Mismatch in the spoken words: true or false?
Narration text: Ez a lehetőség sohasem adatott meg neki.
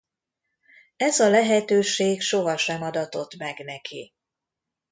false